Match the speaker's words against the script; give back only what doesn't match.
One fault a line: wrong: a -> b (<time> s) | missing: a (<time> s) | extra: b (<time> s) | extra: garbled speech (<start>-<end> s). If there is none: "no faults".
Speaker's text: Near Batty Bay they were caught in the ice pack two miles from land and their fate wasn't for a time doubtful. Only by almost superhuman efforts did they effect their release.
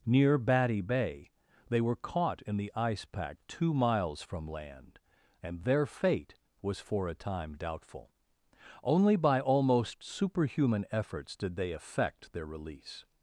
wrong: wasn't -> was (6.6 s)